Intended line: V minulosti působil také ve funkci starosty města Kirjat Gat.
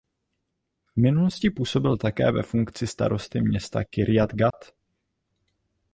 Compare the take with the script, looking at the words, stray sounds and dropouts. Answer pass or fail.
fail